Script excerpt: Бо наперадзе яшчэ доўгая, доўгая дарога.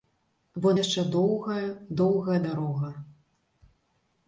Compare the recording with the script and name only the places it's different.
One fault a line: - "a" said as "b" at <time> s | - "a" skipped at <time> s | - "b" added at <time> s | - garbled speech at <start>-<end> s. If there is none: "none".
- "наперадзе" skipped at 0.7 s